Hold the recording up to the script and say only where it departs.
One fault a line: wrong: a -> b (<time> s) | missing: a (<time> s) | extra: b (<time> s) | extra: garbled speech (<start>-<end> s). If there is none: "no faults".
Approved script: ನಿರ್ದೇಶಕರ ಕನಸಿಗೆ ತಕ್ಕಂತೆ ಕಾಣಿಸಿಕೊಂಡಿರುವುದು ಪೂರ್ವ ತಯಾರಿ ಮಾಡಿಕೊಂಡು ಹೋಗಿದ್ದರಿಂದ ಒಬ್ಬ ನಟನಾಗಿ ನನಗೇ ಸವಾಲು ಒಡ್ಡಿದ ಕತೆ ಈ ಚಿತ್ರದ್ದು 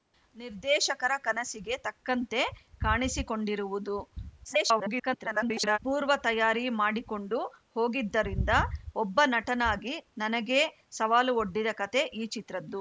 extra: garbled speech (4.4-5.8 s)